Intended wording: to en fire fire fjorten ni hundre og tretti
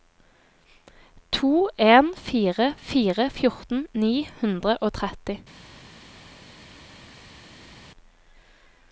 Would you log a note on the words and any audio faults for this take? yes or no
no